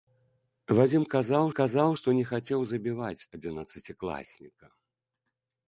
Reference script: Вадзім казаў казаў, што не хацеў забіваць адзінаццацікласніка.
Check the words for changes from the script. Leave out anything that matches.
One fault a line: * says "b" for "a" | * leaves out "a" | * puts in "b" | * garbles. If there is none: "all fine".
all fine